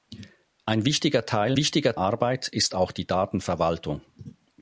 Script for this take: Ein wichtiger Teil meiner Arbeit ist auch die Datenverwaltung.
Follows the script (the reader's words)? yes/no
no